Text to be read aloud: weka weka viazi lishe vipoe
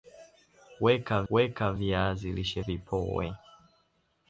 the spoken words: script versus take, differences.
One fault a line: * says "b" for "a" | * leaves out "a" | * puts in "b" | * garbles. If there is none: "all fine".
all fine